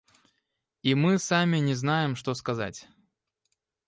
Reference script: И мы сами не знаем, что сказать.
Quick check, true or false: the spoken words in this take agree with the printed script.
true